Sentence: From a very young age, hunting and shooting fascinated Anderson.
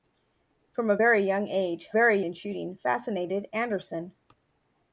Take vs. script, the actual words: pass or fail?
fail